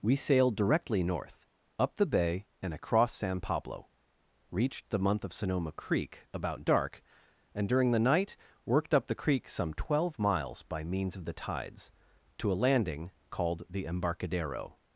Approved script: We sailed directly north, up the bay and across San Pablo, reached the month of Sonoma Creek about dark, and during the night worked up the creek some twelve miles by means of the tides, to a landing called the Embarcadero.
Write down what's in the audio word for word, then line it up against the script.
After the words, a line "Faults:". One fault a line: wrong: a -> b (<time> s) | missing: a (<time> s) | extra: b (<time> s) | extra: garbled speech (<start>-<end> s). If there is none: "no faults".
We sailed directly north, up the bay and across San Pablo, reached the month of Sonoma Creek about dark, and during the night worked up the creek some twelve miles by means of the tides, to a landing called the Embarcadero.
Faults:
no faults